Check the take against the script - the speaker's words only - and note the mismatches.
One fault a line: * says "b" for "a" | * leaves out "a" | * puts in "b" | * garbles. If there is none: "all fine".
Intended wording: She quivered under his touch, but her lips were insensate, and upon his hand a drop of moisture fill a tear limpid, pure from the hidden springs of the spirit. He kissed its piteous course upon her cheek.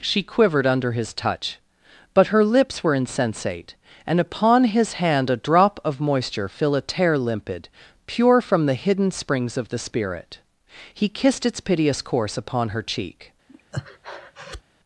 all fine